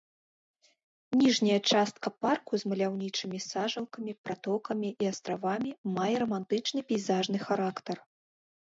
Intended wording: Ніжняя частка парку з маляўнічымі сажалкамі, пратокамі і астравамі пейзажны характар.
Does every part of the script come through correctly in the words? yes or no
no